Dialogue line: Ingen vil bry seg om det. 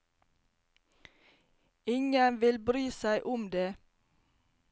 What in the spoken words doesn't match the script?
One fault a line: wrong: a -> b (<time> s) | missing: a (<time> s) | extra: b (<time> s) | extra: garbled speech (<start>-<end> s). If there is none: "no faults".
no faults